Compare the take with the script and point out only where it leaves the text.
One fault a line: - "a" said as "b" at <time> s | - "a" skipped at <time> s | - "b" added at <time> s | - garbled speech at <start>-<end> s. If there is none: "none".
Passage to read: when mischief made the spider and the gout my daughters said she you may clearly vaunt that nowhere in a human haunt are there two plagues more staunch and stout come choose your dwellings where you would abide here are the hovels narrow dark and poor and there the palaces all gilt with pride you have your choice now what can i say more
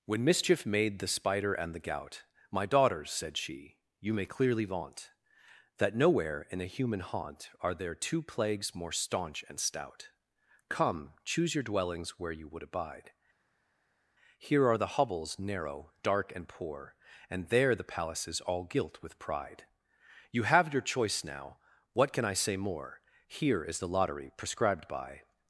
- "here is the lottery prescribed by" added at 23.3 s